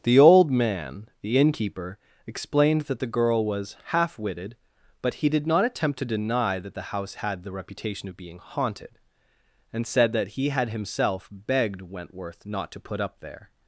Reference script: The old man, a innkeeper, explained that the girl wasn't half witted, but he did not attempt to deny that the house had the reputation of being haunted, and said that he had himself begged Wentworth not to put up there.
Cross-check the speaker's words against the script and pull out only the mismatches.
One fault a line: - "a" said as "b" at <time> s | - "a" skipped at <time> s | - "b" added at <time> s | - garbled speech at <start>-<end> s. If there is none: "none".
- "a" said as "the" at 1.2 s
- "wasn't" said as "was" at 3.5 s